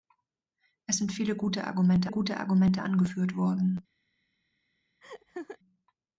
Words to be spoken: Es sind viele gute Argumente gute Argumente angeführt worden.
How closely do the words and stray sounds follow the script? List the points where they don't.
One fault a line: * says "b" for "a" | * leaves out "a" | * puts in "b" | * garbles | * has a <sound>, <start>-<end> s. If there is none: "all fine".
* has a laugh, 5.0-5.6 s